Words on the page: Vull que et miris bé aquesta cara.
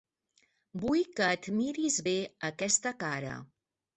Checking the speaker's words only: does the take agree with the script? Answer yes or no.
yes